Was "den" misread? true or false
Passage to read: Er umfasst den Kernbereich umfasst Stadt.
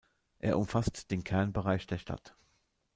false